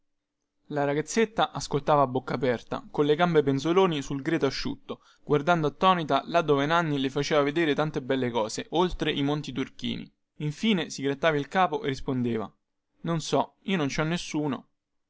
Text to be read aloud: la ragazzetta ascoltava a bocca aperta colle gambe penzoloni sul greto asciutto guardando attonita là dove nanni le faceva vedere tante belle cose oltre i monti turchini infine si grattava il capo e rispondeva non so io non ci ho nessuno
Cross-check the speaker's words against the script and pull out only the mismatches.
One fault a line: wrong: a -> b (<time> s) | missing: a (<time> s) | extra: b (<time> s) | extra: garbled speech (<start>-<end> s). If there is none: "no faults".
no faults